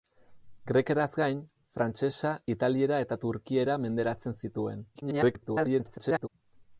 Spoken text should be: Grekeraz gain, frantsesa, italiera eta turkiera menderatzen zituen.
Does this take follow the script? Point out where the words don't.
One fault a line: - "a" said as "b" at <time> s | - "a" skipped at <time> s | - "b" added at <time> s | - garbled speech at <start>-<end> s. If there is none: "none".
- garbled speech at 4.9-6.3 s